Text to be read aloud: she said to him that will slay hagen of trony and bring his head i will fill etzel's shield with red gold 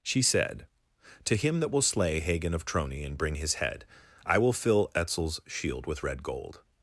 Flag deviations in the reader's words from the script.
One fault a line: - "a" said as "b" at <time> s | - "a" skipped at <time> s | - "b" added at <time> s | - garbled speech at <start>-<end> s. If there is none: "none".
none